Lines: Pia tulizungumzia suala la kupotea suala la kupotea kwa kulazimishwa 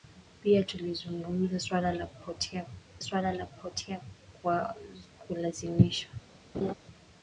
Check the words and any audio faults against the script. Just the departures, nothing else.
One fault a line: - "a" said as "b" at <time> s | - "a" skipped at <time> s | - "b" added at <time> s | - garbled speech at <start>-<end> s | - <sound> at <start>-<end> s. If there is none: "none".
- laugh at 6.5-6.7 s